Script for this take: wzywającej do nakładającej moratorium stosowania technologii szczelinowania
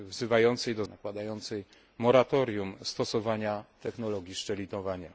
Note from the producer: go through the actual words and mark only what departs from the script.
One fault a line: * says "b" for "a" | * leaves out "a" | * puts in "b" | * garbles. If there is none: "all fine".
all fine